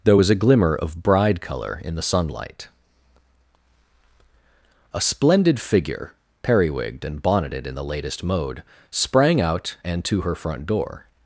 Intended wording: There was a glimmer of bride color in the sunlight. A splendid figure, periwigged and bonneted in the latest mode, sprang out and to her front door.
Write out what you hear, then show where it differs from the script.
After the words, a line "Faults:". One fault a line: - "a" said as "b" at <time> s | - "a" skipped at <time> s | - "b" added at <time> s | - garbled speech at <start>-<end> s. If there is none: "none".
There was a glimmer of bride color in the sunlight. A splendid figure, periwigged and bonneted in the latest mode, sprang out and to her front door.
Faults:
none